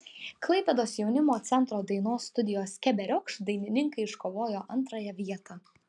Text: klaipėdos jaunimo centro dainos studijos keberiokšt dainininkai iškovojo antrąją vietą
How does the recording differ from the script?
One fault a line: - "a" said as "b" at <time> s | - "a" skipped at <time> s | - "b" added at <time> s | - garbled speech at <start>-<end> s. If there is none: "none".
none